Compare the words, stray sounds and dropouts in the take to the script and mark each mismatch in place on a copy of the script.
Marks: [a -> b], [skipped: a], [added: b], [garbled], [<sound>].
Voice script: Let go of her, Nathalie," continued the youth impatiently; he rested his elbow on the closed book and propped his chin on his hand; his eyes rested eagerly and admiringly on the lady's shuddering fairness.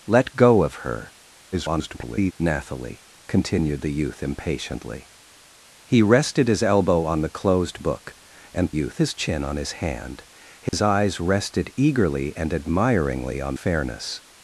Let go of her, [garbled] Nathalie," continued the youth impatiently; he rested his elbow on the closed book and [propped -> youth] his chin on his hand; his [dropout] eyes rested eagerly and admiringly on [skipped: the lady's shuddering] fairness.